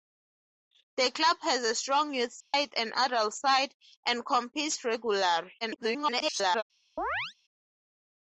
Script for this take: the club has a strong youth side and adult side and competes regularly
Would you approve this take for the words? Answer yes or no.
no